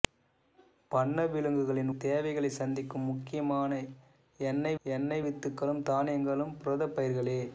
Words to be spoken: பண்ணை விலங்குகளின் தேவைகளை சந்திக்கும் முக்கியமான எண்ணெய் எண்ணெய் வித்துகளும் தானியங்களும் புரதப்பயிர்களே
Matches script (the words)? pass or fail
pass